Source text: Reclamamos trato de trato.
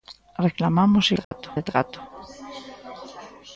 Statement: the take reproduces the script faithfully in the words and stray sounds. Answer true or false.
false